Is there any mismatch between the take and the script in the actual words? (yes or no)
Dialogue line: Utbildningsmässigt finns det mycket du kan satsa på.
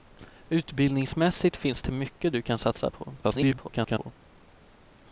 yes